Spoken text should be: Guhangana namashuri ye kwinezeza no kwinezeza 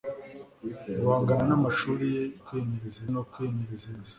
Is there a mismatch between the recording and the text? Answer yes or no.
no